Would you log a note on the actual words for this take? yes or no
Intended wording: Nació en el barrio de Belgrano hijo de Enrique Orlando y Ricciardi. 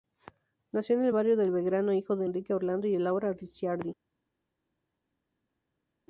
yes